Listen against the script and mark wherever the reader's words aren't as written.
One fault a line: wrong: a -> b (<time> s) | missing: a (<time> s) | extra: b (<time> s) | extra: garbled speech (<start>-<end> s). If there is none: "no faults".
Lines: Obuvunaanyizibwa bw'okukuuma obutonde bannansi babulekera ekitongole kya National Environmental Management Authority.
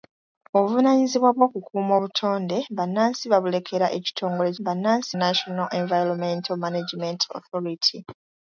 wrong: kya -> bannansi (4.6 s)